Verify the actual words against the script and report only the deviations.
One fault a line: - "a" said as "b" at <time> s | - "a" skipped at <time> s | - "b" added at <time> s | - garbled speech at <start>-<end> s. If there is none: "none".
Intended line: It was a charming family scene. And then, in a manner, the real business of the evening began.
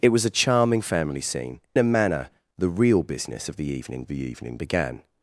- "And then in" skipped at 1.6 s
- "the evening" added at 4.1 s